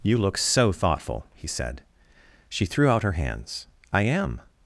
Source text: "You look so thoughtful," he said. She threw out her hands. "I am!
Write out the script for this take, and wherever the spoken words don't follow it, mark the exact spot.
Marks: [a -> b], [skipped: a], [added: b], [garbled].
"You look so thoughtful," he said. She threw out her hands. "I am!